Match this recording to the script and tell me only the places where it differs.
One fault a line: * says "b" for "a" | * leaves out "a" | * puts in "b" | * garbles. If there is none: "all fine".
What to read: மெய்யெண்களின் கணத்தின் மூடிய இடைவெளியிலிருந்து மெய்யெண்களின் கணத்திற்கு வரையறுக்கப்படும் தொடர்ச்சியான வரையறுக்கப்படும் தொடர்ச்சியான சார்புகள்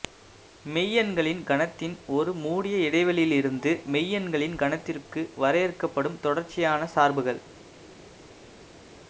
* puts in "ஒரு"
* leaves out "வரையறுக்கப்படும் தொடர்ச்சியான"